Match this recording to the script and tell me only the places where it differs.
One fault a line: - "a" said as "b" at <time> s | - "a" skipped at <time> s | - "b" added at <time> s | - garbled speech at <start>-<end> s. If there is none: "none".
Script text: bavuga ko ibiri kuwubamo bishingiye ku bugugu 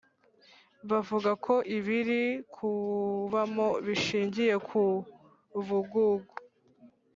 none